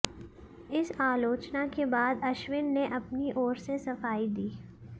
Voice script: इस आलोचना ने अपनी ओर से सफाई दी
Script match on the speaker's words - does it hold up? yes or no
no